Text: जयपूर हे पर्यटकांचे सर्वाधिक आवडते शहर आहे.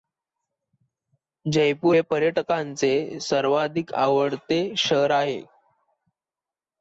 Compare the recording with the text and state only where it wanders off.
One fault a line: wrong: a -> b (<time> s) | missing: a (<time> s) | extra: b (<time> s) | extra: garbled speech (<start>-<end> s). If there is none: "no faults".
no faults